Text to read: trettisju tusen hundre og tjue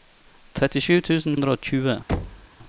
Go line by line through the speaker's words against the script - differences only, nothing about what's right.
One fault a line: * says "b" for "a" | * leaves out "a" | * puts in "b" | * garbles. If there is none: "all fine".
all fine